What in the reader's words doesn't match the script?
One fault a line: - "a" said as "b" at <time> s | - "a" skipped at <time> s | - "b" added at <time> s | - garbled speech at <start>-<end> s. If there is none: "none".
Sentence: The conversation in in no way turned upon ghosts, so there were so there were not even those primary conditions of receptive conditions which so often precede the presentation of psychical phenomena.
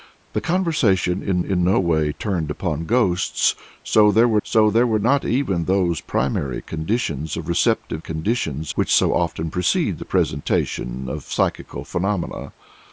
none